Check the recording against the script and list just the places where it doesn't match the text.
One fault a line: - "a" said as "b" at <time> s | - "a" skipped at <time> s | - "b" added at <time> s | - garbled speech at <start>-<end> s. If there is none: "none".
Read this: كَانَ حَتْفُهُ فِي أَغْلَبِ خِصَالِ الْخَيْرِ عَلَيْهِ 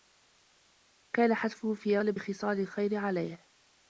none